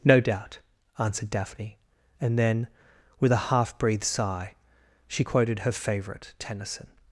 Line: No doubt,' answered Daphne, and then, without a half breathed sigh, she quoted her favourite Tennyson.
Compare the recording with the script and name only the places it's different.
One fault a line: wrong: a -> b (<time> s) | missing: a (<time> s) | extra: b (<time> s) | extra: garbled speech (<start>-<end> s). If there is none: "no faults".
wrong: without -> with (3.2 s)